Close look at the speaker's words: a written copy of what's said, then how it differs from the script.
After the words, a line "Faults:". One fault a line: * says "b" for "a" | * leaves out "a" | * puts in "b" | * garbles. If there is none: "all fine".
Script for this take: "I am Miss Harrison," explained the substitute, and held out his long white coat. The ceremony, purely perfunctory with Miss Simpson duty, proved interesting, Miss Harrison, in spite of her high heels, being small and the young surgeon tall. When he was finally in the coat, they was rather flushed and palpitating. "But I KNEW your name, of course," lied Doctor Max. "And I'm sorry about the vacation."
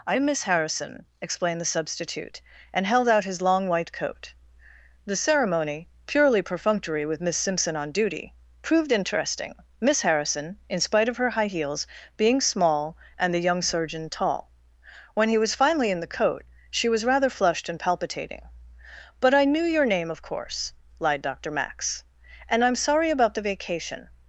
"I am Miss Harrison," explained the substitute, and held out his long white coat. The ceremony, purely perfunctory with Miss Simpson on duty, proved interesting, Miss Harrison, in spite of her high heels, being small and the young surgeon tall. When he was finally in the coat, she was rather flushed and palpitating. "But I KNEW your name, of course," lied Doctor Max. "And I'm sorry about the vacation."
Faults:
* puts in "on"
* says "she" for "they"